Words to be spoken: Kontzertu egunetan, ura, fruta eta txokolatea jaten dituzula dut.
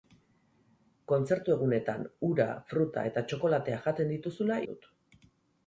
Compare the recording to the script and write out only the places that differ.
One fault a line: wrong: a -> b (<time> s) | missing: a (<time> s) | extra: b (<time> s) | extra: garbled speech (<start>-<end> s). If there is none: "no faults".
no faults